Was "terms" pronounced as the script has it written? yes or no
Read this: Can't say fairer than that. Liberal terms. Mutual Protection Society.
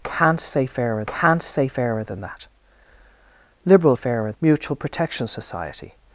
no